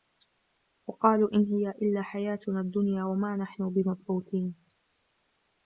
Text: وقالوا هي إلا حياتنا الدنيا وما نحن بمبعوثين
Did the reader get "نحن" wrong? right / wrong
right